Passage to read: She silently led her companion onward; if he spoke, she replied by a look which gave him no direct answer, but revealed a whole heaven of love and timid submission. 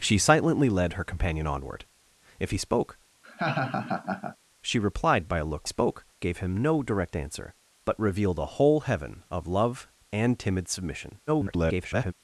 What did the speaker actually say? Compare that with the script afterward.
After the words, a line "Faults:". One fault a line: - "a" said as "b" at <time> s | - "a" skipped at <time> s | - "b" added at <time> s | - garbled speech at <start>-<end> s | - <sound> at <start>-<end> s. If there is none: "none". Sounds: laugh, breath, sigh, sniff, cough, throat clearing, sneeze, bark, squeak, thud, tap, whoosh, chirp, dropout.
She silently led her companion onward; if he spoke, she replied by a look spoke gave him no direct answer, but revealed a whole heaven of love and timid submission. [garbled]
Faults:
- laugh at 3.2-4.4 s
- "which" said as "spoke" at 5.6 s
- garbled speech at 11.3-12.1 s